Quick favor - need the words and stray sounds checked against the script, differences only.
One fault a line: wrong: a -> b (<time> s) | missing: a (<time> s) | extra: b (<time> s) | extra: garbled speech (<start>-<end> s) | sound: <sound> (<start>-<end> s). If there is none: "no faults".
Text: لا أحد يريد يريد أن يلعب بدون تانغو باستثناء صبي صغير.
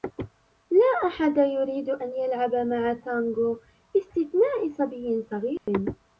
missing: يريد (1.9 s)
wrong: بدون -> مع (2.5 s)
sound: dropout (5.6-5.7 s)